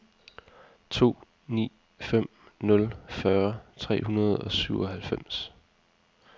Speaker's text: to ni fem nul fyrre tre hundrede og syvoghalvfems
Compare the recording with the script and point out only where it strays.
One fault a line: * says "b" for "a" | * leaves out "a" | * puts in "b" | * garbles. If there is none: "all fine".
all fine